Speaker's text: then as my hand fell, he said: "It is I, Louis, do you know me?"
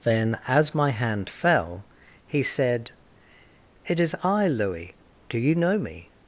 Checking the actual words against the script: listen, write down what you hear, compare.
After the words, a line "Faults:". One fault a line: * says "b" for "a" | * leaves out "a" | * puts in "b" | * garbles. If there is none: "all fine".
then as my hand fell, he said: "It is I, Louis, do you know me?"
Faults:
all fine